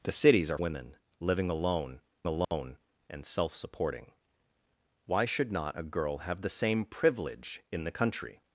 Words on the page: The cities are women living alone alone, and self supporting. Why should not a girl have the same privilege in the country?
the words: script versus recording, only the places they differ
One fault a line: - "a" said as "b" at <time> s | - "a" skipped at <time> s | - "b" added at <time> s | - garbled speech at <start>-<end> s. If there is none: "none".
none